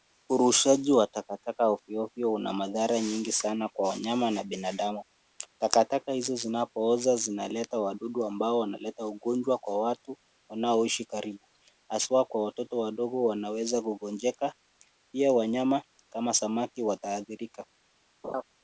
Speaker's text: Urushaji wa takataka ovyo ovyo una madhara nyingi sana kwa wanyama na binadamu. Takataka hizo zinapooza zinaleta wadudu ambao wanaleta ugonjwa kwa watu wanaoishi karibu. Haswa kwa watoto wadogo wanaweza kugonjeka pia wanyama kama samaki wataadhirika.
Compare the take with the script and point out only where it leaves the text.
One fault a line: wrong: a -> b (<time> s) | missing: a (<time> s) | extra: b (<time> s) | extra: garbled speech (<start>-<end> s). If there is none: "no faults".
no faults